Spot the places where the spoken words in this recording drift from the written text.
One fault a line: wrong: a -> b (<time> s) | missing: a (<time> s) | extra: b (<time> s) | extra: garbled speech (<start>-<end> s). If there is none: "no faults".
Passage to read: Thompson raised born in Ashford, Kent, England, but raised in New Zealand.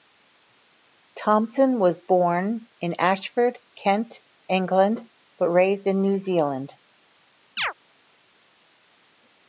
wrong: raised -> was (1.8 s)